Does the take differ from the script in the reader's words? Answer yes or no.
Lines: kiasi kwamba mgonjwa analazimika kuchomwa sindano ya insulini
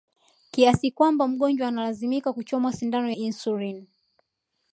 yes